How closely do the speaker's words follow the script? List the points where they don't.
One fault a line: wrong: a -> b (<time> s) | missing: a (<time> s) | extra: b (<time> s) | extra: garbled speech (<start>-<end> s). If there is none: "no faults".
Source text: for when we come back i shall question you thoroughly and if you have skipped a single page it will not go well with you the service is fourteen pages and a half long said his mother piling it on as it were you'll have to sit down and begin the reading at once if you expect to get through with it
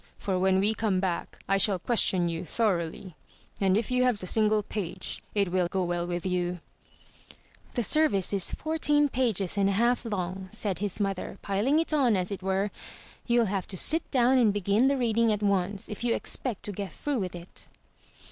missing: skipped (4.2 s)
missing: not (5.7 s)